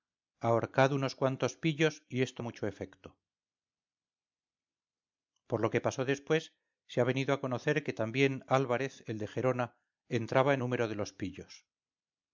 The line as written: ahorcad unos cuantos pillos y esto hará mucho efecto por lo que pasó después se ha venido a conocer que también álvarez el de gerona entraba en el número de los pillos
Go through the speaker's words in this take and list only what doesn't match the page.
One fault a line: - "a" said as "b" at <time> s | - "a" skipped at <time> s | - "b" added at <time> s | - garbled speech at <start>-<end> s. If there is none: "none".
- "hará" skipped at 2.4 s
- "el" skipped at 10.6 s